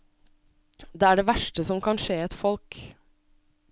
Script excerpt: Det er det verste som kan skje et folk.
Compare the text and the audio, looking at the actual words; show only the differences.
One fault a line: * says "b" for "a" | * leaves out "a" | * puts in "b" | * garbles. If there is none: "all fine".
all fine